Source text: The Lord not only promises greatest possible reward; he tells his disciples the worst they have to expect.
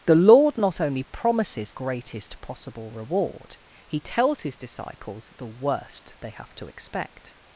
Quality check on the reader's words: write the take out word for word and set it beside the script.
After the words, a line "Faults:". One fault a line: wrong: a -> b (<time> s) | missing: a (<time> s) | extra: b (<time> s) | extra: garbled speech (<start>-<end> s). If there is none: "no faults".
The Lord not only promises greatest possible reward; he tells his disciples the worst they have to expect.
Faults:
no faults